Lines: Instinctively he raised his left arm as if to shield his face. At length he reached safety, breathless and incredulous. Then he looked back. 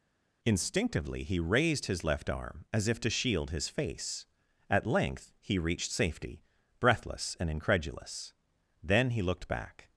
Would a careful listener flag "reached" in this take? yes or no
no